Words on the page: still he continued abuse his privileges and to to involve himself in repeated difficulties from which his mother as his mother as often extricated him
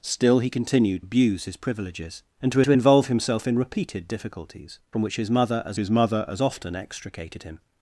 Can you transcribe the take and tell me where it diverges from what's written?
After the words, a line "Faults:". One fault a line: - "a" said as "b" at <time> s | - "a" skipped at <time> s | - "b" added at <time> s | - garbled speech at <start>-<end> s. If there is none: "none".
still he continued abuse his privileges and to to involve himself in repeated difficulties from which his mother as his mother as often extricated him
Faults:
none